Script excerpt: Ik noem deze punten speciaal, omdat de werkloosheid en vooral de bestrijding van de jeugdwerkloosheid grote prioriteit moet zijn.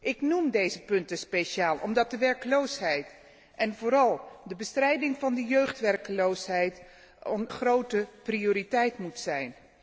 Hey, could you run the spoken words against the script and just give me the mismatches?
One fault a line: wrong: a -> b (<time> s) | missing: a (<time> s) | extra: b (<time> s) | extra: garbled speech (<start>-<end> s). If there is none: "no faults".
no faults